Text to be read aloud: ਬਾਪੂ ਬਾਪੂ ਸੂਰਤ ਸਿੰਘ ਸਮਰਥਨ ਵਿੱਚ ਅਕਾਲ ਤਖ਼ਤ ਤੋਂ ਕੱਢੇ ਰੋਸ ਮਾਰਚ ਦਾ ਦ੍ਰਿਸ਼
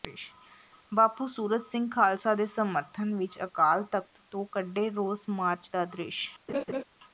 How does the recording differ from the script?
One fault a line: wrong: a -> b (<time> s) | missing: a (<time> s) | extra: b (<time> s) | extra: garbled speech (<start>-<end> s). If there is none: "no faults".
missing: ਬਾਪੂ (1.2 s)
extra: ਖਾਲਸਾ ਦੇ (1.9 s)